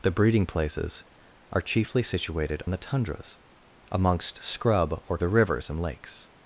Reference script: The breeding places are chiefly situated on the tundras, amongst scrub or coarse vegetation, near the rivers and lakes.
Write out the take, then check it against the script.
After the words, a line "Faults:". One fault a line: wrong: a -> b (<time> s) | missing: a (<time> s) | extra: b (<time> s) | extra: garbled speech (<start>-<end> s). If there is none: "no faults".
The breeding places are chiefly situated the tundras, amongst scrub or the rivers and lakes.
Faults:
missing: on (2.6 s)
missing: coarse vegetation near (5.2 s)